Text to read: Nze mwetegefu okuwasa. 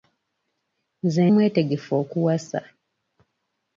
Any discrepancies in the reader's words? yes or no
no